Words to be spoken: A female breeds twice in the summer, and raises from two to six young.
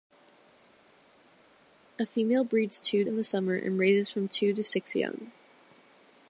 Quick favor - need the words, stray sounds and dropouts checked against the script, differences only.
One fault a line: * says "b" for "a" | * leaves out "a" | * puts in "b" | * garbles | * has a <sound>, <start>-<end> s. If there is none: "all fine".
* says "two" for "twice"